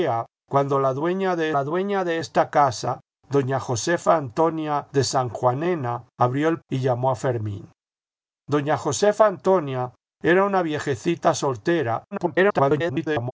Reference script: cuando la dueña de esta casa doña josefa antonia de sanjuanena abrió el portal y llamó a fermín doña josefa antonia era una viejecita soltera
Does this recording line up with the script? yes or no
no